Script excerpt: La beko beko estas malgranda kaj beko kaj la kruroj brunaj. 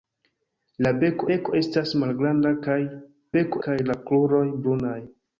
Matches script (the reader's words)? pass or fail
pass